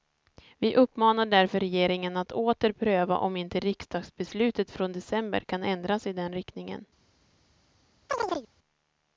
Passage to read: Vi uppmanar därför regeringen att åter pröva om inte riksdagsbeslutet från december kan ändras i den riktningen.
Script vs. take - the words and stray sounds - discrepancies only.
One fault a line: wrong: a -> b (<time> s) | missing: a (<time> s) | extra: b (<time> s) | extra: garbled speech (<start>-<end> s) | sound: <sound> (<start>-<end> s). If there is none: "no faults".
sound: chirp (8.1-8.5 s)